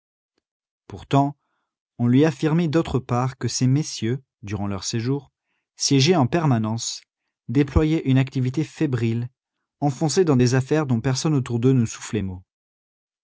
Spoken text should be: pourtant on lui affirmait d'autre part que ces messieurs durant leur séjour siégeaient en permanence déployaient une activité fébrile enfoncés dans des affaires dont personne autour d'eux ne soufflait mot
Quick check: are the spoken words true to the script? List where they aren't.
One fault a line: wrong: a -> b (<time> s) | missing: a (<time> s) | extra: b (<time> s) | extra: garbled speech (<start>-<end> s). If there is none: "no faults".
no faults